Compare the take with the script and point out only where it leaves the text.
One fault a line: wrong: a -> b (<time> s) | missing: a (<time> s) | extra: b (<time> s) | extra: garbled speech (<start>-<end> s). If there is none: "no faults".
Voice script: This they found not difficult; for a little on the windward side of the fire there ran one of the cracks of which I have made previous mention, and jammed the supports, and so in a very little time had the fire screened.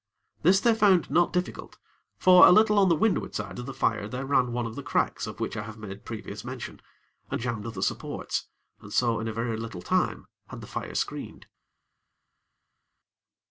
no faults